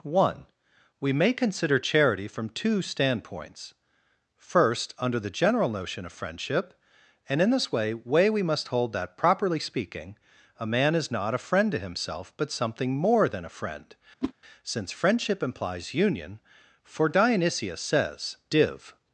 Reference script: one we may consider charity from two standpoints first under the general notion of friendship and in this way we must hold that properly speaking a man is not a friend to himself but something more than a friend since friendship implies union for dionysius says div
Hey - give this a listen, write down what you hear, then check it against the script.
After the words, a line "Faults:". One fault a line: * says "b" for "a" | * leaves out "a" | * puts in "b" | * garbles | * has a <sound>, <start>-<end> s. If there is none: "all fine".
one we may consider charity from two standpoints first under the general notion of friendship and in this way way we must hold that properly speaking a man is not a friend to himself but something more than a friend since friendship implies union for dionysius says div
Faults:
* puts in "way"
* has a whoosh, 14.2-14.3 s